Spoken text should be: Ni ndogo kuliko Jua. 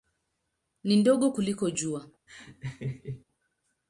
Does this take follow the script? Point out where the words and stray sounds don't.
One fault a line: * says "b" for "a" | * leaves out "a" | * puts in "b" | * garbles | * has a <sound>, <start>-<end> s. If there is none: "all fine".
* has a laugh, 2.3-3.2 s